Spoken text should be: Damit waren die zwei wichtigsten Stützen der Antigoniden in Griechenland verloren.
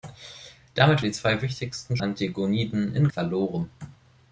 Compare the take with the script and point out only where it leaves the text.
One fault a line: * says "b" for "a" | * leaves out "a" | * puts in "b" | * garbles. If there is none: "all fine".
* leaves out "waren"
* leaves out "Stützen der"
* leaves out "Griechenland"